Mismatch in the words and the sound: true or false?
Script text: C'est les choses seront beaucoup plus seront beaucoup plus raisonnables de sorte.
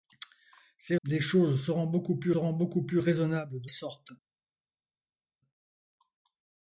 false